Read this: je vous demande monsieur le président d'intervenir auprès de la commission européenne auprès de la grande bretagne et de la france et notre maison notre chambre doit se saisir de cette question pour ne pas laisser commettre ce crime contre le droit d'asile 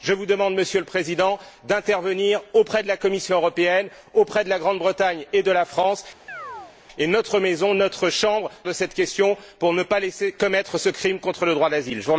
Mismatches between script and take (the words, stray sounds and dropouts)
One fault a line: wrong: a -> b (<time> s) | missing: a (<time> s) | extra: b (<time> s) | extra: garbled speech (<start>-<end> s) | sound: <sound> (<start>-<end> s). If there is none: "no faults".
sound: chirp (6.3-6.8 s)
missing: doit se saisir (8.5 s)